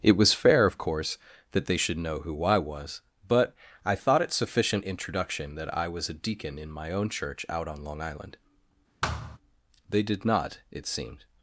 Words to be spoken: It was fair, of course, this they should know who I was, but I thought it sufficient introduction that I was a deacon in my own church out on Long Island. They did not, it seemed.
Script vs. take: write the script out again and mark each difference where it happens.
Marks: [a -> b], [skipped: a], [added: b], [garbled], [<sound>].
It was fair, of course, [this -> that] they should know who I was, but I thought it sufficient introduction that I was a deacon in my own church out on Long Island. [thud] They did not, it seemed.